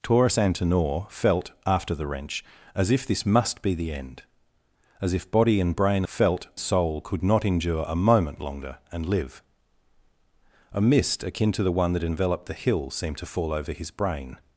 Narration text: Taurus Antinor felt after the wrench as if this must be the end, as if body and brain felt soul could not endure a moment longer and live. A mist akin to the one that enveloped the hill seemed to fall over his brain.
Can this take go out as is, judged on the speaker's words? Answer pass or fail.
pass